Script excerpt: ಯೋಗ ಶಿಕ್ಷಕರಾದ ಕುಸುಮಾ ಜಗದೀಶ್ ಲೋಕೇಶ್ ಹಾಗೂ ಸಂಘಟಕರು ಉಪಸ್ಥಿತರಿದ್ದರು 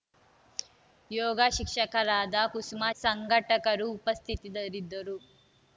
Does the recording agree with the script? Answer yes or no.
no